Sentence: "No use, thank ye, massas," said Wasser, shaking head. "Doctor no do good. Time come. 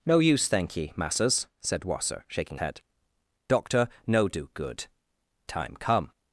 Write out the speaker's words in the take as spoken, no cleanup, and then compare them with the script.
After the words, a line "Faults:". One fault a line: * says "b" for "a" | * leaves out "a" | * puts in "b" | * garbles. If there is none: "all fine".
"No use, thank ye, massas," said Wasser, shaking head. "Doctor no do good. Time come.
Faults:
all fine